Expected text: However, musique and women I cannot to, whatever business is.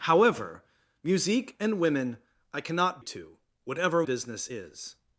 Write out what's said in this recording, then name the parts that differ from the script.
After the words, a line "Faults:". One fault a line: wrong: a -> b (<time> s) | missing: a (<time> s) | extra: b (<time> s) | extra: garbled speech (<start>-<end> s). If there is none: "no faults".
However, musique and women I cannot to, whatever business is.
Faults:
no faults